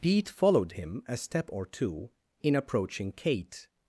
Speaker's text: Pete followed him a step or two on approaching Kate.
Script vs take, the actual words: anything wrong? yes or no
yes